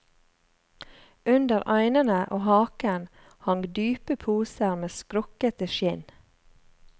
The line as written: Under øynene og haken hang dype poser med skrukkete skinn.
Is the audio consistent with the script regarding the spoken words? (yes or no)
yes